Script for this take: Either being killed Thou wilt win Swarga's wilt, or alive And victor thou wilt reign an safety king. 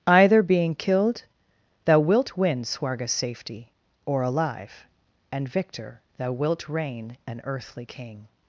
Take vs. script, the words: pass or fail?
fail